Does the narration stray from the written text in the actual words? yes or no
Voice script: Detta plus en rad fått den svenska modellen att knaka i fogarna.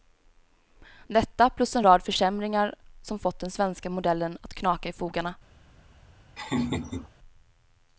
yes